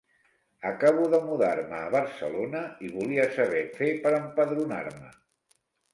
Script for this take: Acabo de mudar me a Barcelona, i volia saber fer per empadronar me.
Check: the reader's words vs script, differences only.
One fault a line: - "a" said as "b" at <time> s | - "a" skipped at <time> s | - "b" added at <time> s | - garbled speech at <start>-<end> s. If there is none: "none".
none